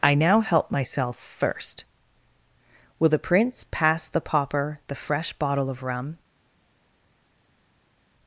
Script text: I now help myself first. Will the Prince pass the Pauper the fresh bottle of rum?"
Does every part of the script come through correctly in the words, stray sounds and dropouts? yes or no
yes